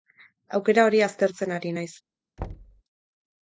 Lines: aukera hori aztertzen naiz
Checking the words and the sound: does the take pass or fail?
fail